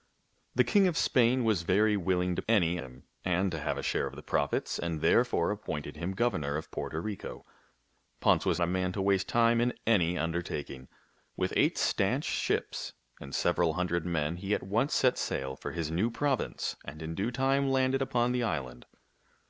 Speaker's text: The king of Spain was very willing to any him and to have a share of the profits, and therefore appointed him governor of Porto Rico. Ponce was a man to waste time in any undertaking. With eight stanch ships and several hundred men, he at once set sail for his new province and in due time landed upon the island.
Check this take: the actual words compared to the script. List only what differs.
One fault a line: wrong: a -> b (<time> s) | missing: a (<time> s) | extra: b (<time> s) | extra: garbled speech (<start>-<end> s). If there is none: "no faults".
no faults